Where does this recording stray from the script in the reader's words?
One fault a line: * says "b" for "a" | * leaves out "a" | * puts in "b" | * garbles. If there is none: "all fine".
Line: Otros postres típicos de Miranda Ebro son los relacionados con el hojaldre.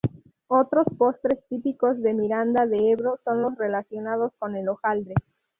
* puts in "de"